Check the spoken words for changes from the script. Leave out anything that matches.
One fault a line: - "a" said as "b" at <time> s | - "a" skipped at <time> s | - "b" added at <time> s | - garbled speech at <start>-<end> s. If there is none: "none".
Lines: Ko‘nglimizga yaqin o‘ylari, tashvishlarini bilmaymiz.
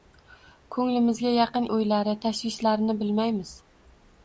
none